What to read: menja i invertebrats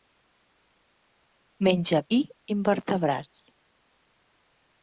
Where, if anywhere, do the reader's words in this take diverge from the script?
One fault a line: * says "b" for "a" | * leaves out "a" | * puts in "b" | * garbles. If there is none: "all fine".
all fine